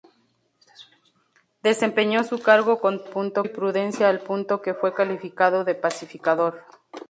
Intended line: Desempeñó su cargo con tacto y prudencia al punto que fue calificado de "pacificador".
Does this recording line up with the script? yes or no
no